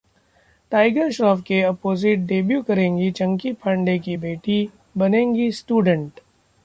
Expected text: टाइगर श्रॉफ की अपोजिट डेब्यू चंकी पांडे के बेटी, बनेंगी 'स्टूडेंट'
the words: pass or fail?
fail